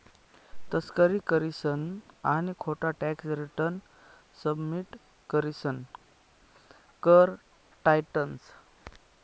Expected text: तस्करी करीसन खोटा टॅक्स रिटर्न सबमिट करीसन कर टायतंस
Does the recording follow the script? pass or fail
fail